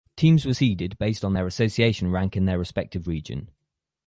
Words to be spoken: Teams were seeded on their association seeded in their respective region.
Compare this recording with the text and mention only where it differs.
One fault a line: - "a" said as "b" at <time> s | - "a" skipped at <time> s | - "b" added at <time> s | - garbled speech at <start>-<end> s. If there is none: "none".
- "based" added at 1.0 s
- "seeded" said as "rank" at 2.1 s